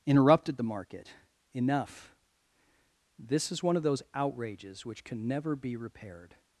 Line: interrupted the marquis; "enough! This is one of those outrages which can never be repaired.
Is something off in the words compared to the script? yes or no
yes